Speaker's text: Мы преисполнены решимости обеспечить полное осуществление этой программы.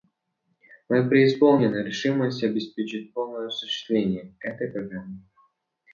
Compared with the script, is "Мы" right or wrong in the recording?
right